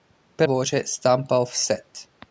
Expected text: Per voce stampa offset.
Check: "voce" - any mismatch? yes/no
no